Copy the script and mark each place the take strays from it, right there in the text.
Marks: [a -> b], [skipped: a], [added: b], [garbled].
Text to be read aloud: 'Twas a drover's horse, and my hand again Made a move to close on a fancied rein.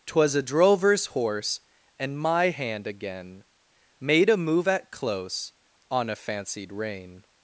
'Twas a drover's horse, and my hand again Made a move [to -> at] close on a fancied rein.